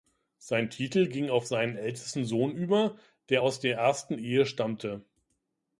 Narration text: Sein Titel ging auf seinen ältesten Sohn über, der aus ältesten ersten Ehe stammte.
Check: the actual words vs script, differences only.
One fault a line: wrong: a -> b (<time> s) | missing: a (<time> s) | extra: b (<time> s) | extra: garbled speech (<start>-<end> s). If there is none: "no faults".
wrong: ältesten -> der (3.6 s)